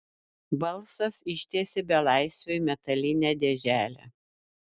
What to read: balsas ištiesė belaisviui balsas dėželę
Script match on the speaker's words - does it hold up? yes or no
no